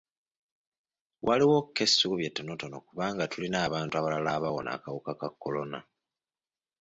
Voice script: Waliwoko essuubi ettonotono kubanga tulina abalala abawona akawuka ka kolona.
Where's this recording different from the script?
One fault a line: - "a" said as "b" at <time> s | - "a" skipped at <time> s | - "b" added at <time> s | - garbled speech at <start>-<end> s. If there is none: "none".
- "abantu" added at 3.7 s